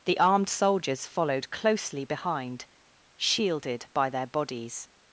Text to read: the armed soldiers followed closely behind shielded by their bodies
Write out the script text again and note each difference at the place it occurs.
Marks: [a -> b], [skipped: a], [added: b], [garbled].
the armed soldiers followed closely behind shielded by their bodies